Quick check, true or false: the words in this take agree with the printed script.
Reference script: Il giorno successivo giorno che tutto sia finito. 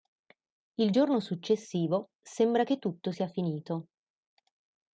false